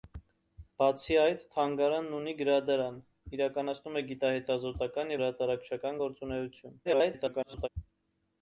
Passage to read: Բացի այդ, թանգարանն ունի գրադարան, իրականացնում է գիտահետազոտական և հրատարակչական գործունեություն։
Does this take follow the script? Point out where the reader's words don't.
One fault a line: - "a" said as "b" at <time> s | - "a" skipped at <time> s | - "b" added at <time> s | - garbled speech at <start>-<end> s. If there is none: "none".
- "և" skipped at 5.2 s
- garbled speech at 6.8-7.7 s